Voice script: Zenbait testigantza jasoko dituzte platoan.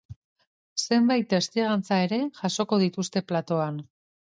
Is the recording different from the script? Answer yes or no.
yes